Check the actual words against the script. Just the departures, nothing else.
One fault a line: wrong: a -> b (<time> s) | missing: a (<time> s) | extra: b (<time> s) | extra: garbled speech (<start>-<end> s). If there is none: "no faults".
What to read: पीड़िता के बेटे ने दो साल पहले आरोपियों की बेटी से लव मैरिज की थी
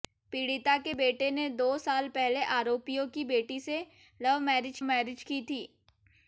extra: मैरिज (4.8 s)